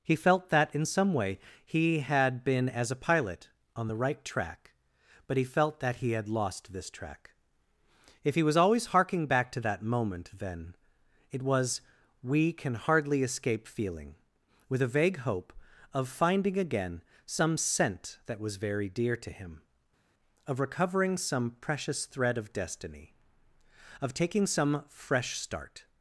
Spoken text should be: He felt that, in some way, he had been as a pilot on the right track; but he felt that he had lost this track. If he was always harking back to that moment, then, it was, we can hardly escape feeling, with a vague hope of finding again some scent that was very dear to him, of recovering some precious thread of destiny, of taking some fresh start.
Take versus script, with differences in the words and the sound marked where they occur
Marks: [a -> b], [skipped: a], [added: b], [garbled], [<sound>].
He felt that, in some way, he had been as a pilot on the right track; but he felt that he had lost this track. If he was always harking back to that moment, then, it was, we can hardly escape feeling, with a vague hope of finding again some scent that was very dear to him, of recovering some precious thread of destiny, of taking some fresh start.